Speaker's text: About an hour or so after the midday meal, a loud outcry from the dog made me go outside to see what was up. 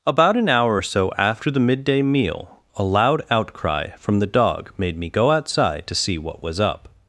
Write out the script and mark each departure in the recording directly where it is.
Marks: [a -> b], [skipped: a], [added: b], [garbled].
About an hour or so after the midday meal, a loud outcry from the dog made me go outside to see what was up.